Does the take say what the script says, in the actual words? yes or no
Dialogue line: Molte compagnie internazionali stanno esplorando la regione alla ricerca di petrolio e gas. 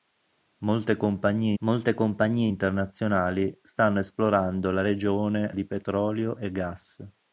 no